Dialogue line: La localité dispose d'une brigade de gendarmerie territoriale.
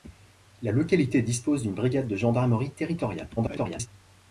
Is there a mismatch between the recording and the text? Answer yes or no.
yes